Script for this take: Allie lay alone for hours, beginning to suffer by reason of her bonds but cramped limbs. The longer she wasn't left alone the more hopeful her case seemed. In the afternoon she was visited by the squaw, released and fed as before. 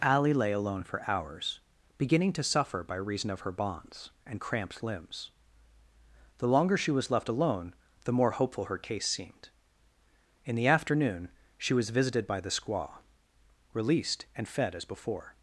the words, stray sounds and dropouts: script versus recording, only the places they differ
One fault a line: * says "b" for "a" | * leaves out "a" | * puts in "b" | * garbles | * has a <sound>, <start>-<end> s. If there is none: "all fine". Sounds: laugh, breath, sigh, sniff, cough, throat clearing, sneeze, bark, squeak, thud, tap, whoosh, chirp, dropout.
* says "and" for "but"
* says "was" for "wasn't"